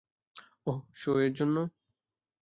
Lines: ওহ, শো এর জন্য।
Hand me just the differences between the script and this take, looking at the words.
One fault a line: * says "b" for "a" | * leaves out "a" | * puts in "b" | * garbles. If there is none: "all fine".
all fine